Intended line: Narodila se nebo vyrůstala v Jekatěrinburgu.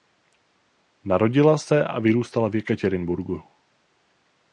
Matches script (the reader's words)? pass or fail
fail